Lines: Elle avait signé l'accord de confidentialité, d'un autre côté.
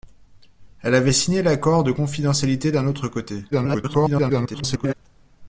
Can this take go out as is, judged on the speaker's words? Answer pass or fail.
fail